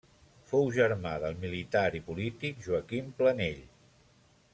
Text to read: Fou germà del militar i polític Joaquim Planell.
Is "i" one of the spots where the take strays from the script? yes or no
no